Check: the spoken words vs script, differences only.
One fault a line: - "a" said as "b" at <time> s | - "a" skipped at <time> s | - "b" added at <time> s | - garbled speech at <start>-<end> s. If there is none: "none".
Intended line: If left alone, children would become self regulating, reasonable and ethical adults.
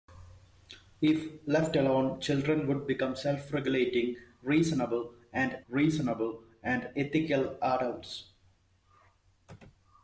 - "reasonable and" added at 5.7 s